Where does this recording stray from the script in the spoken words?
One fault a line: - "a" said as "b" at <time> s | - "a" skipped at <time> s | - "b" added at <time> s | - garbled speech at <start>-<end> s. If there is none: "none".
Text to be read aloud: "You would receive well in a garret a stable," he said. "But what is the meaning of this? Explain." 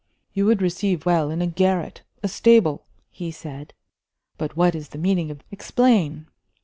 - "this" skipped at 5.4 s